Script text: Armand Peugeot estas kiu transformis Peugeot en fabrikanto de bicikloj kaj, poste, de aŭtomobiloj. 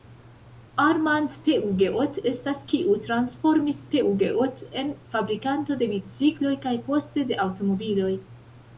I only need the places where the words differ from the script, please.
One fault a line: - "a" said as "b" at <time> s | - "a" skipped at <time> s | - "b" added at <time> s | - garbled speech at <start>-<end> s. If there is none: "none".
none